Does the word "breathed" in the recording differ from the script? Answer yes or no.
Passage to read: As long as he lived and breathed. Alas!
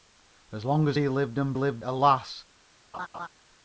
yes